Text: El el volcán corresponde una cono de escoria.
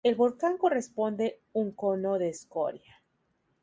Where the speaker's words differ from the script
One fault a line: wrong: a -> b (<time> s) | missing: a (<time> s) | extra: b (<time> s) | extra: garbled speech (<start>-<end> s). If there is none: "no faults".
missing: el (0.1 s)
wrong: una -> un (1.5 s)